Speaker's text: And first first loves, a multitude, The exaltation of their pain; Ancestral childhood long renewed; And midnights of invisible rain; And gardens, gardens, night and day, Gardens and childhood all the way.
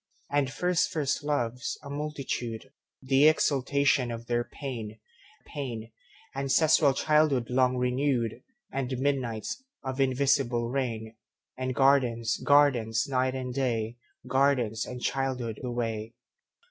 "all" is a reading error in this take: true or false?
true